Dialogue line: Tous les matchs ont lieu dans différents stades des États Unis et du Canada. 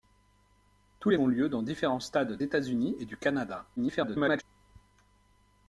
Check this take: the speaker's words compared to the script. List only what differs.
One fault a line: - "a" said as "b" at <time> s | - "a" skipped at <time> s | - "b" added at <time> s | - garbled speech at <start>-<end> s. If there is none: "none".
- "matchs" skipped at 1.2 s
- "des" skipped at 2.4 s
- garbled speech at 3.8-4.4 s